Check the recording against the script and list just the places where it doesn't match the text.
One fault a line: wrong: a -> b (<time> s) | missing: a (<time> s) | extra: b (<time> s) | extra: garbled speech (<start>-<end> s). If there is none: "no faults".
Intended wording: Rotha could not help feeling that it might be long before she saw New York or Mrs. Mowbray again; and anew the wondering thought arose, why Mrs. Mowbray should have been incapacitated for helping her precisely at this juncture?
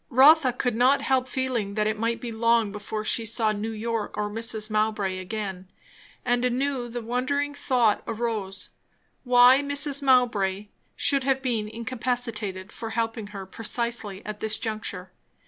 no faults